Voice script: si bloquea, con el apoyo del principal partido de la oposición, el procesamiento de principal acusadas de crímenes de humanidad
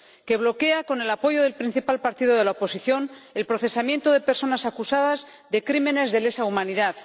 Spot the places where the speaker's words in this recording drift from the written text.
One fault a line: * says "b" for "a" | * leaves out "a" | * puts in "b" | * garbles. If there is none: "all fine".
* says "que" for "si"
* says "personas" for "principal"
* puts in "lesa"